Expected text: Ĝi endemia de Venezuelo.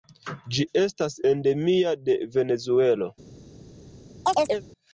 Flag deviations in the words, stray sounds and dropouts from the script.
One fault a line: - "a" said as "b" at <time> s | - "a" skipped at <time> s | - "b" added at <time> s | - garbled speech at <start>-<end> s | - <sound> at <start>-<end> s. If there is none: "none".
- "estas" added at 0.8 s
- chirp at 4.2-4.6 s